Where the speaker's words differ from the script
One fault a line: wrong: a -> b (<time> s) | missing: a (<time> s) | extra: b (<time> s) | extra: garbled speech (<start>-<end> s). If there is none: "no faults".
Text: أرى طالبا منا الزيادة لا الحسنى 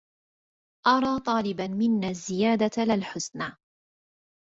no faults